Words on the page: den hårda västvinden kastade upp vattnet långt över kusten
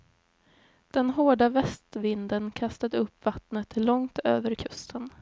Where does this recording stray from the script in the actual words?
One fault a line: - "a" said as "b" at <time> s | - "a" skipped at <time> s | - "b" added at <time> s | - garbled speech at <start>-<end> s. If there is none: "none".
none